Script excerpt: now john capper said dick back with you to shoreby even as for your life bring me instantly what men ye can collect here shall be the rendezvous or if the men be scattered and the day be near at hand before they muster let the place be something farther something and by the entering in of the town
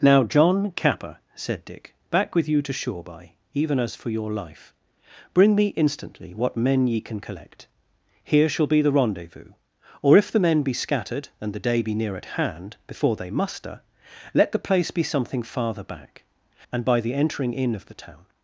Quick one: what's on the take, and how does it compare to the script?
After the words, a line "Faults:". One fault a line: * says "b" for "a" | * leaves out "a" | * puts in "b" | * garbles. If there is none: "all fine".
now john capper said dick back with you to shoreby even as for your life bring me instantly what men ye can collect here shall be the rendezvous or if the men be scattered and the day be near at hand before they muster let the place be something farther back and by the entering in of the town
Faults:
* says "back" for "something"